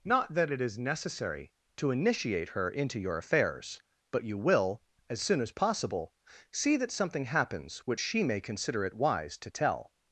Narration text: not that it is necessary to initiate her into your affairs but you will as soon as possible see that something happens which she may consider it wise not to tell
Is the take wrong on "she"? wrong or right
right